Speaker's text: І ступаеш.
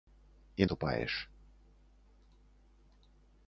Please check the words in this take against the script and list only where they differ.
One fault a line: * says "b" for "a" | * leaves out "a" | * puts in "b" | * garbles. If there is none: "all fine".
all fine